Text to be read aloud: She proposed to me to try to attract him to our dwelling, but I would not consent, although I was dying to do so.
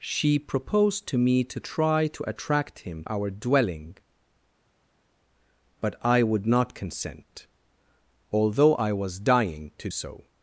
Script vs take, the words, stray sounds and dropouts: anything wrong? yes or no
yes